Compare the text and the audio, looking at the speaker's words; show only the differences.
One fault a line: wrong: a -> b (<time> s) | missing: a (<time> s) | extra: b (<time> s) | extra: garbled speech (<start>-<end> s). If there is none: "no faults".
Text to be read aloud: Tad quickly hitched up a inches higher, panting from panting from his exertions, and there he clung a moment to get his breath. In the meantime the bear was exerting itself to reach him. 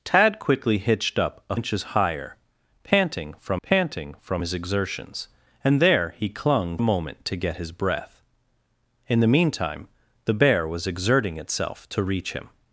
no faults